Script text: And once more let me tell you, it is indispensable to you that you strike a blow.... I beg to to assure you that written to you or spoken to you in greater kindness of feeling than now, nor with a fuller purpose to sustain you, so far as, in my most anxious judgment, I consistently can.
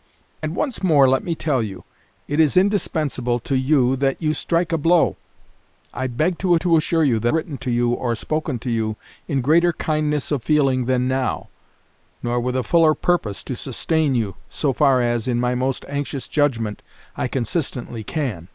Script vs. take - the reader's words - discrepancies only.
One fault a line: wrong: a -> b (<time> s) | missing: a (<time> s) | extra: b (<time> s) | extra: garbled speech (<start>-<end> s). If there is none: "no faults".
no faults